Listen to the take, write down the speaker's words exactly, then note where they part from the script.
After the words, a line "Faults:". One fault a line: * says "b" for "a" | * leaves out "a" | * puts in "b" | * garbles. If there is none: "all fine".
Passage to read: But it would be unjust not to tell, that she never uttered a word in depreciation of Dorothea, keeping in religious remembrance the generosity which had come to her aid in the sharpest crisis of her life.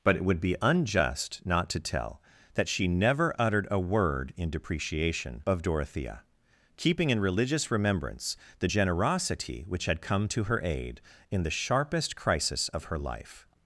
But it would be unjust not to tell, that she never uttered a word in depreciation of Dorothea, keeping in religious remembrance the generosity which had come to her aid in the sharpest crisis of her life.
Faults:
all fine